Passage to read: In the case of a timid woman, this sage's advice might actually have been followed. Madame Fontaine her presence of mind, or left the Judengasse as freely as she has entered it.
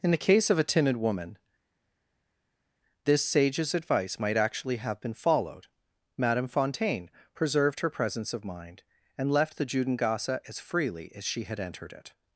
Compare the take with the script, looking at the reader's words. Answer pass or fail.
fail